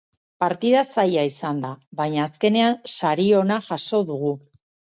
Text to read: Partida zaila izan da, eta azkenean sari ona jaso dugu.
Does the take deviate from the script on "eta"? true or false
true